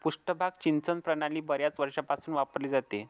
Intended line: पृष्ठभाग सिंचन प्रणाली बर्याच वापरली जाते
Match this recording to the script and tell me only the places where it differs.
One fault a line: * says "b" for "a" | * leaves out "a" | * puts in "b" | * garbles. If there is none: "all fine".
* puts in "वर्षांपासून"